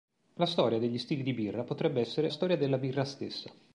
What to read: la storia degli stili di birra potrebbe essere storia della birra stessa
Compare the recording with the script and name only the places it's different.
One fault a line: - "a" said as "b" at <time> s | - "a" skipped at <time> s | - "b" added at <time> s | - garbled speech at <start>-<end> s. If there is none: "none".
none